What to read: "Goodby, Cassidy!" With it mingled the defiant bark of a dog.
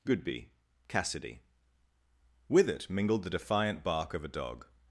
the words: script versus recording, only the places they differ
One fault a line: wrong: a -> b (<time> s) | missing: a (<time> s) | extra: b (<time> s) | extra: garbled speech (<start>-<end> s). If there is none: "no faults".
no faults